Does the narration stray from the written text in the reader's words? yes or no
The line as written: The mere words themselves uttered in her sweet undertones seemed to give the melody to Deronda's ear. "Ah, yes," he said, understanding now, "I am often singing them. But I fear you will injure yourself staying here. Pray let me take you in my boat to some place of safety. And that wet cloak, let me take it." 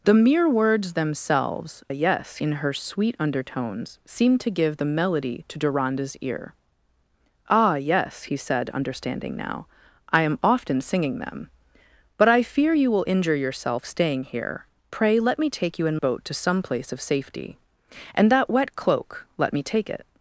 yes